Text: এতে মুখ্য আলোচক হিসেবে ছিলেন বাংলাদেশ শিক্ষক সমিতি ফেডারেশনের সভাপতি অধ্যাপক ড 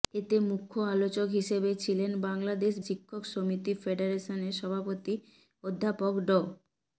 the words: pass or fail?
pass